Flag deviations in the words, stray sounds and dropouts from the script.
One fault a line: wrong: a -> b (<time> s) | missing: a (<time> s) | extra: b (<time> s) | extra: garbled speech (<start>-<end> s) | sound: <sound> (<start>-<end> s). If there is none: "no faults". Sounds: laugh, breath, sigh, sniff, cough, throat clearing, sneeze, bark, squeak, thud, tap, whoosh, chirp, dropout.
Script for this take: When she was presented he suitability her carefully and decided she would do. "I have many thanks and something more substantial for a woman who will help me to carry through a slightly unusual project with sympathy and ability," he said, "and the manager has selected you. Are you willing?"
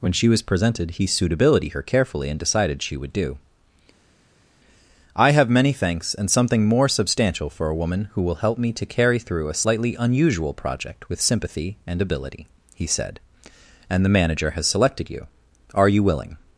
no faults